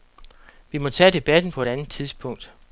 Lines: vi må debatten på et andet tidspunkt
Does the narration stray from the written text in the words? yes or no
yes